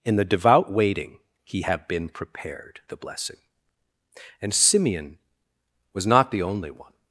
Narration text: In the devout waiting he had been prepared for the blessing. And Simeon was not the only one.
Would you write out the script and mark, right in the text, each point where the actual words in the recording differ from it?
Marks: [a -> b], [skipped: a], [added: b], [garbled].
In the devout waiting he had been prepared [skipped: for] the blessing. And Simeon was not the only one.